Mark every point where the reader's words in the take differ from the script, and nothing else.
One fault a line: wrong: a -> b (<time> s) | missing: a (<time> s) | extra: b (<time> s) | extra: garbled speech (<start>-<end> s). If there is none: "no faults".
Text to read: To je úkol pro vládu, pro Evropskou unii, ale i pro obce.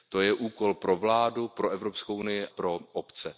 missing: ale i (2.5 s)